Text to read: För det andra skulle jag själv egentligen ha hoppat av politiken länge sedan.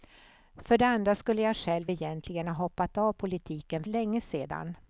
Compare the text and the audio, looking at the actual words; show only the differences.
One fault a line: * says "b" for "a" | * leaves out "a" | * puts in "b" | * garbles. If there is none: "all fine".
all fine